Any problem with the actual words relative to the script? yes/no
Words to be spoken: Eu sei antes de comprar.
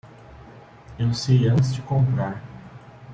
no